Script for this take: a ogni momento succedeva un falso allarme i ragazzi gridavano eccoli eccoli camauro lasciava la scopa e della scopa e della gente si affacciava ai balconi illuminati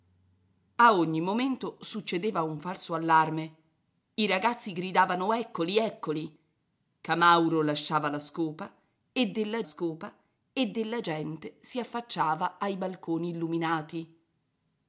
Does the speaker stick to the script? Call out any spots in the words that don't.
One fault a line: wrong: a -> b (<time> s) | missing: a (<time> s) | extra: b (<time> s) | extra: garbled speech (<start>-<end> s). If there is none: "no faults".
no faults